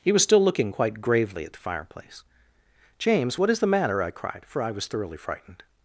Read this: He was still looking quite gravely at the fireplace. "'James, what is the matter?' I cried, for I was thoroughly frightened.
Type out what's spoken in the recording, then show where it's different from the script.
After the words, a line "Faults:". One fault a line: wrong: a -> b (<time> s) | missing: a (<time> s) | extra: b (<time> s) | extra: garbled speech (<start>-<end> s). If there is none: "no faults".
He was still looking quite gravely at the fireplace. "'James, what is the matter?' I cried, for I was thoroughly frightened.
Faults:
no faults